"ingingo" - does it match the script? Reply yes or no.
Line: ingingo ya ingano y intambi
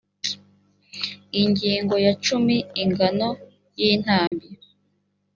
yes